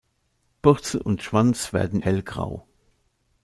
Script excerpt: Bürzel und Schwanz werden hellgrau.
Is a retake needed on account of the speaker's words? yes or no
no